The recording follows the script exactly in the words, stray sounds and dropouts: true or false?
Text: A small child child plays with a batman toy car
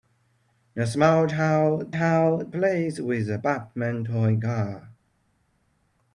true